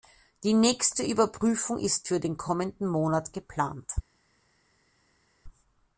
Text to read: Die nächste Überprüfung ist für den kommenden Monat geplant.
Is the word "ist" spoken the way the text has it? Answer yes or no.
yes